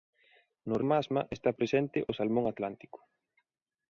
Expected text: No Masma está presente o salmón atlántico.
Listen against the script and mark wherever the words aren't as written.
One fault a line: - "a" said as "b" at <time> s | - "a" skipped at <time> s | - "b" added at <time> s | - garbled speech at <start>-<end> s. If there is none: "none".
none